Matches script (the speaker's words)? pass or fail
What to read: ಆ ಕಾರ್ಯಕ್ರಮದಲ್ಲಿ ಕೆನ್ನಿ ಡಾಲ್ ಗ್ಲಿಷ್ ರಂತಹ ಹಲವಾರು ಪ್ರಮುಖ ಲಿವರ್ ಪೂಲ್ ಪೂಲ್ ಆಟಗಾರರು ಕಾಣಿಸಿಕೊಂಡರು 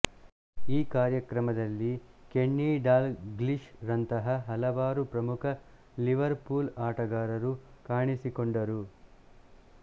fail